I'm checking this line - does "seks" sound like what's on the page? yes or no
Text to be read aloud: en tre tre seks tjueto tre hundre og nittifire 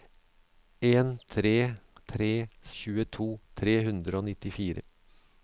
no